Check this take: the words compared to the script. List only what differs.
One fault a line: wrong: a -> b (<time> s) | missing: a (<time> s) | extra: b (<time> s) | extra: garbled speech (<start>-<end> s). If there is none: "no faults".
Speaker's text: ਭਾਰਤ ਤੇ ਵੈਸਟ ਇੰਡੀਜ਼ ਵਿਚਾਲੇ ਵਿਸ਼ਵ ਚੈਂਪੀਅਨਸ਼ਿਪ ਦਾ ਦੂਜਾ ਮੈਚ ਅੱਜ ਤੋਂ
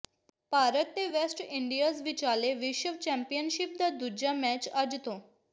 no faults